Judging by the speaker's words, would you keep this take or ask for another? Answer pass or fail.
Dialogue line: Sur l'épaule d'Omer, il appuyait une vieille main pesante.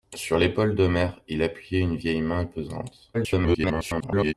fail